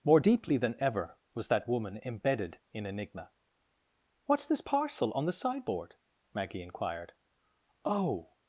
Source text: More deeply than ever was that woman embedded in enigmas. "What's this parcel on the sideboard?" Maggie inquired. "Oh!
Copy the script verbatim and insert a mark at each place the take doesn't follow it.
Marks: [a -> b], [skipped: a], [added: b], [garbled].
More deeply than ever was that woman embedded in [enigmas. -> enigma] "What's this parcel on the sideboard?" Maggie inquired. "Oh!